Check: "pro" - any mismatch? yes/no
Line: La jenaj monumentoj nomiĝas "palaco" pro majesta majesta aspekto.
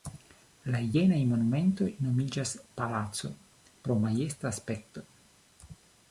no